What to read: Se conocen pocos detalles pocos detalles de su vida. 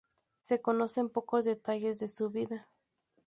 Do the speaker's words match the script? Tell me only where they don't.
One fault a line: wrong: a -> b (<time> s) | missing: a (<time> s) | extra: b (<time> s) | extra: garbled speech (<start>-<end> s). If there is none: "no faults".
missing: pocos detalles (2.0 s)